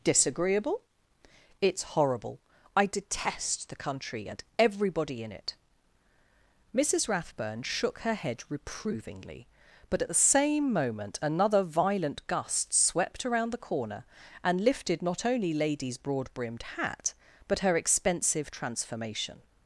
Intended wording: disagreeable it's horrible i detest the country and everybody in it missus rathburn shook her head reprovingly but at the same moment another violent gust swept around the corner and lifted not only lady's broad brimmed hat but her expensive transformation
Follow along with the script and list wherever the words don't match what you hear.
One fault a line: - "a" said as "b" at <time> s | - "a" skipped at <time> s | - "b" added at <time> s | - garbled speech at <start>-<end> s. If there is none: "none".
none